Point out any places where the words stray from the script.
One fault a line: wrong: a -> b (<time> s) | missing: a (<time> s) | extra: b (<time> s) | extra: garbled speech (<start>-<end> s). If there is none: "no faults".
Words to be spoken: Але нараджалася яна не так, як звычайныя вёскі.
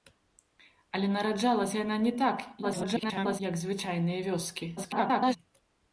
extra: garbled speech (2.6-3.4 s)
extra: garbled speech (4.8-5.4 s)